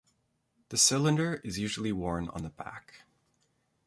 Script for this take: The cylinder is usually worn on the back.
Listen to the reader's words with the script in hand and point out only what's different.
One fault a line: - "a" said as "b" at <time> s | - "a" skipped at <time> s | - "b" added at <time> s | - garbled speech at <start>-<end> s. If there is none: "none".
none